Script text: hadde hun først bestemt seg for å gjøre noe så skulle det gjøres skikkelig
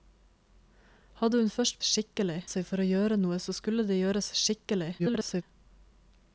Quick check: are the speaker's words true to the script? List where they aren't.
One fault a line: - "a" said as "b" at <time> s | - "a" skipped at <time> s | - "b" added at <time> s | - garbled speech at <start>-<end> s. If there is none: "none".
- "bestemt" said as "skikkelig" at 1.8 s
- garbled speech at 5.0-5.4 s